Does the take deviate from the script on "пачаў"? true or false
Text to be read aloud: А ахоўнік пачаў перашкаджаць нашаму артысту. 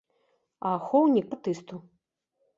true